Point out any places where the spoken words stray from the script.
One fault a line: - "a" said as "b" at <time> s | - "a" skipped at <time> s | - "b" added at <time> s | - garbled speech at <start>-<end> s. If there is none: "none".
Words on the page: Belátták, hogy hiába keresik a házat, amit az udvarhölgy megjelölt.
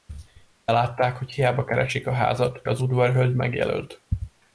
- "amit" skipped at 2.6 s